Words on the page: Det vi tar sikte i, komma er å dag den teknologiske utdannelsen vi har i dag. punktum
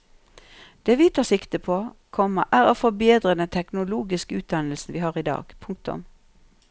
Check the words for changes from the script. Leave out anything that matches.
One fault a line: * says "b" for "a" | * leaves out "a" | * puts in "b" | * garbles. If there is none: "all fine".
* says "på" for "i"
* says "forbedre" for "dag"